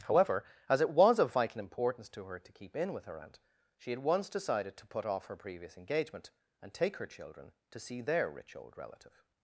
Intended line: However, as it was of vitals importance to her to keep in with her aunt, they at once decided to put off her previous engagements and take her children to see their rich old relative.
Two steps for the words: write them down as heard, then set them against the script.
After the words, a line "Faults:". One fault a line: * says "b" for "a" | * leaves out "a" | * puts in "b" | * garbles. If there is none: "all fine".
However, as it was of vital importance to her to keep in with her aunt, she at once decided to put off her previous engagement and take her children to see their rich old relative.
Faults:
* says "vital" for "vitals"
* says "she" for "they"
* says "engagement" for "engagements"